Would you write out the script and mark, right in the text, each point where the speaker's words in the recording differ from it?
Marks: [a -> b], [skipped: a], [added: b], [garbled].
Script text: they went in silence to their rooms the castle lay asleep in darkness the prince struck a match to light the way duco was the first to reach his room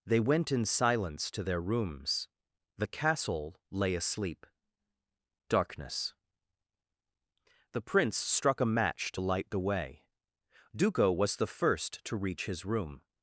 they went in silence to their rooms the castle lay asleep [skipped: in] darkness the prince struck a match to light the way duco was the first to reach his room